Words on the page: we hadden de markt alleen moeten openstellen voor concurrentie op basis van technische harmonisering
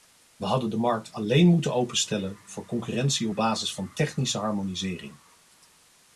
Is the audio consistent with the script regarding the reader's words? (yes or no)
yes